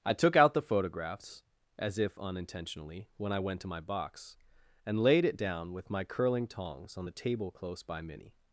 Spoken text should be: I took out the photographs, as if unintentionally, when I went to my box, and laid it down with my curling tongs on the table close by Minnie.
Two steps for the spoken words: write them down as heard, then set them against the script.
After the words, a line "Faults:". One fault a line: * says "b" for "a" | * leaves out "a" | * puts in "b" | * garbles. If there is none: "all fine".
I took out the photographs, as if unintentionally, when I went to my box, and laid it down with my curling tongs on the table close by Minnie.
Faults:
all fine